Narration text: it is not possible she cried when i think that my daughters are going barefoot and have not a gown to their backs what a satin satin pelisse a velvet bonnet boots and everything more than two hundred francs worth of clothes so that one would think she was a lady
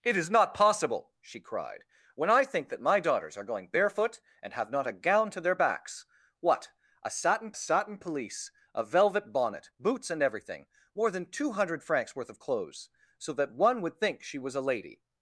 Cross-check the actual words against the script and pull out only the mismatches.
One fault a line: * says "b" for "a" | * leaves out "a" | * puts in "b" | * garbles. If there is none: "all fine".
all fine